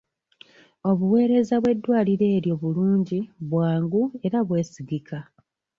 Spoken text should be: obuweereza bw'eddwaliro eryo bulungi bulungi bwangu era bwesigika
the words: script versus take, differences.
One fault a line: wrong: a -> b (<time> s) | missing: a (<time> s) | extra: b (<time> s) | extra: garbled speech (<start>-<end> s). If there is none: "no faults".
missing: bulungi (3.2 s)